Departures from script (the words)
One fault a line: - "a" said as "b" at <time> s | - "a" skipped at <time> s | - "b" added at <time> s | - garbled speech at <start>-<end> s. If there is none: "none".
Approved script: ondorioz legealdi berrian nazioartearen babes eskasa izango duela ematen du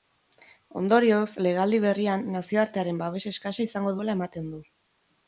none